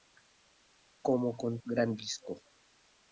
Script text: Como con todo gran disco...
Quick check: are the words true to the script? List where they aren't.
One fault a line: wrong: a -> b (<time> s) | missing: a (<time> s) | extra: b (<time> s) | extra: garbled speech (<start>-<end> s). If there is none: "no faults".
missing: todo (1.5 s)